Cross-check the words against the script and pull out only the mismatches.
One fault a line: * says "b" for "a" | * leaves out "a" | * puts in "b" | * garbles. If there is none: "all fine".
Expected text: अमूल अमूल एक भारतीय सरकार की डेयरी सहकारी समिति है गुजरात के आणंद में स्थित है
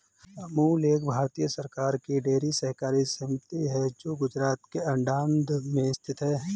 * leaves out "अमूल"
* puts in "जो"